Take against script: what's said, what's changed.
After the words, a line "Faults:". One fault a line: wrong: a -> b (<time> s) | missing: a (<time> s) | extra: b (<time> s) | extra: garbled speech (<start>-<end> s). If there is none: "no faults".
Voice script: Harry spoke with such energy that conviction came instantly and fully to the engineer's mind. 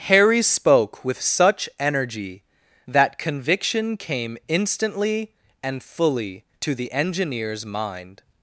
Harry spoke with such energy that conviction came instantly and fully to the engineer's mind.
Faults:
no faults